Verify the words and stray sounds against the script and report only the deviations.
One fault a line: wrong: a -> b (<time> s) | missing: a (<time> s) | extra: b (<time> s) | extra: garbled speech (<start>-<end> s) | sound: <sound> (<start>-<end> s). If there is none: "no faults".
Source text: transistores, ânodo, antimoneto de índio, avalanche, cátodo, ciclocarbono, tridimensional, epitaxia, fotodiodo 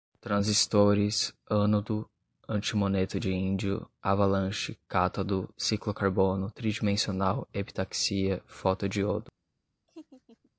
sound: laugh (9.9-10.5 s)